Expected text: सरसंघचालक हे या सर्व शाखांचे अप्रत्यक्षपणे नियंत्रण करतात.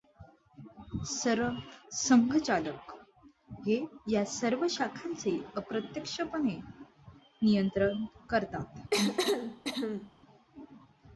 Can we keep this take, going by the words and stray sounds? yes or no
no